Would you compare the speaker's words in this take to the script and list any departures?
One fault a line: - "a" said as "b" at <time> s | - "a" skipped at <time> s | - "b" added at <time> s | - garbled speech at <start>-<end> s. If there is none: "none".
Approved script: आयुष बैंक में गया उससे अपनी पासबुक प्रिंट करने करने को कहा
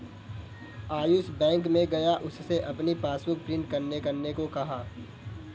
none